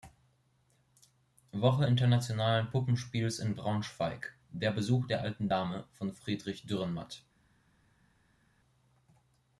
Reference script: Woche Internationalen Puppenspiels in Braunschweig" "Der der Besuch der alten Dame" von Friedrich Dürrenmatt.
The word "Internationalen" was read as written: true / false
true